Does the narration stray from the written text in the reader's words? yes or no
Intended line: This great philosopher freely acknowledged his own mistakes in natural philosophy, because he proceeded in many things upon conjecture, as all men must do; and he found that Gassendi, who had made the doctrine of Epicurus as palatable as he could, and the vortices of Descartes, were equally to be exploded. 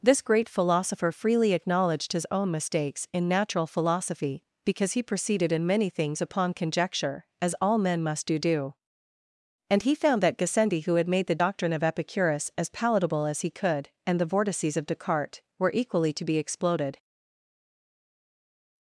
yes